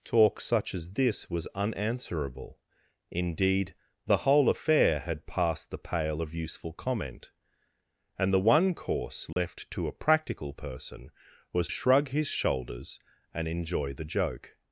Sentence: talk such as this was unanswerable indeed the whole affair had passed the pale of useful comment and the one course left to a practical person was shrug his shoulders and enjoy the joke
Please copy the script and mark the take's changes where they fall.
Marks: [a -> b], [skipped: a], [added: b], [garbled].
talk such as this was unanswerable indeed the whole affair had passed the pale of useful comment and the one course left to a practical person was shrug his shoulders and enjoy the joke